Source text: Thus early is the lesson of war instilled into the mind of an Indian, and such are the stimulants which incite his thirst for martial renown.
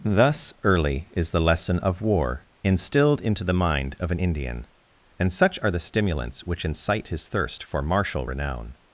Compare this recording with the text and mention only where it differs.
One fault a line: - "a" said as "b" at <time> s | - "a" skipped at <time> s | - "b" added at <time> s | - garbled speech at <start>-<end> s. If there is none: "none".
none